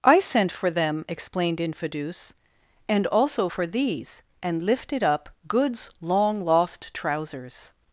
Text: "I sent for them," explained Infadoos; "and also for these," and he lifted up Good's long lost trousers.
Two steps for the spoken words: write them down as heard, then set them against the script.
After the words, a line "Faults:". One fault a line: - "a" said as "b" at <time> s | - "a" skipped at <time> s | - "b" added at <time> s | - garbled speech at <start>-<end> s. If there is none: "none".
"I sent for them," explained Infadoos; "and also for these," and lifted up Good's long lost trousers.
Faults:
- "he" skipped at 4.6 s